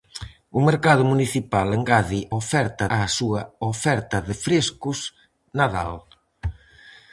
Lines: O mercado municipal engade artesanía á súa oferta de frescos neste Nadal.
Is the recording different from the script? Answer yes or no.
yes